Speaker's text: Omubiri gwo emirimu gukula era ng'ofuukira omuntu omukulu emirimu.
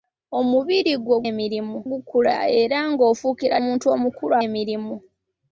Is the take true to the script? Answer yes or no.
yes